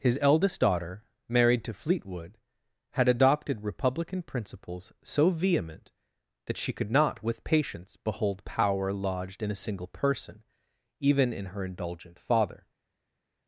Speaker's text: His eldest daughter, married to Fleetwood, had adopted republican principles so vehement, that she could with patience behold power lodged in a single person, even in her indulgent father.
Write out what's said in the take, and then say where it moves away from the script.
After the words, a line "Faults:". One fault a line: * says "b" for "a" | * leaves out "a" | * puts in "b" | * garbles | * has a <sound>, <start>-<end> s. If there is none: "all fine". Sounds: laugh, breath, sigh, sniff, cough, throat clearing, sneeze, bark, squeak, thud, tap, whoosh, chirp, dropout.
His eldest daughter, married to Fleetwood, had adopted republican principles so vehement, that she could not with patience behold power lodged in a single person, even in her indulgent father.
Faults:
* puts in "not"